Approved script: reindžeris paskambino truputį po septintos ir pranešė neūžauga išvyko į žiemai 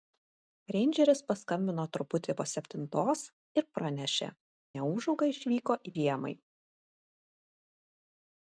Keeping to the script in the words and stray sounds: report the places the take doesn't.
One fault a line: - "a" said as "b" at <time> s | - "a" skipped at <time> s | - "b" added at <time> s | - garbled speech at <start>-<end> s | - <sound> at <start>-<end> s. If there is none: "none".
none